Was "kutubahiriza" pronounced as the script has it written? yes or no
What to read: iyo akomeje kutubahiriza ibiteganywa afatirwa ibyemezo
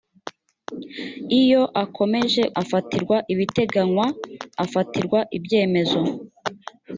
no